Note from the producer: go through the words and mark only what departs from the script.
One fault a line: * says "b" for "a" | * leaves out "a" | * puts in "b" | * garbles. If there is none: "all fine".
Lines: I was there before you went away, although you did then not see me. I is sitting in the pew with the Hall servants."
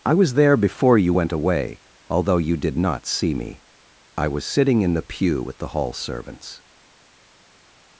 * leaves out "then"
* says "was" for "is"